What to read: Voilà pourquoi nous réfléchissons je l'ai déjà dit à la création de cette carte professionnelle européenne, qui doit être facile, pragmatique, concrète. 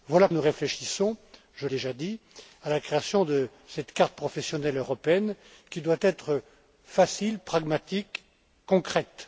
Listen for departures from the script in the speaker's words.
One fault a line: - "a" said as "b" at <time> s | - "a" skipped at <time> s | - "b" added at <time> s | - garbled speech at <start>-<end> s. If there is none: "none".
- "pourquoi" skipped at 0.3 s
- "l'ai" skipped at 1.7 s